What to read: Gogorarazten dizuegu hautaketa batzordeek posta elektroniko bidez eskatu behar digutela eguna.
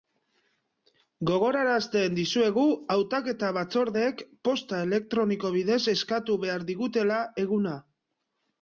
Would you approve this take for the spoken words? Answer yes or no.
yes